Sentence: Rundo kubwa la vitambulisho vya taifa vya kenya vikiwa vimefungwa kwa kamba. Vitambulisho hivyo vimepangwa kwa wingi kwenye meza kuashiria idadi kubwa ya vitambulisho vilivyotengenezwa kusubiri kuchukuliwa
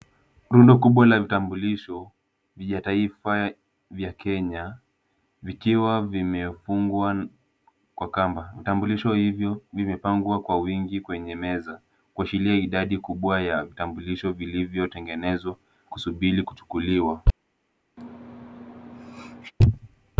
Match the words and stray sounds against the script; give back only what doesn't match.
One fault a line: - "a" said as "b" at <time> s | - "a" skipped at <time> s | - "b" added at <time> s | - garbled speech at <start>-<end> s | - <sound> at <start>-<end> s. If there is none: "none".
- sneeze at 18.0-19.5 s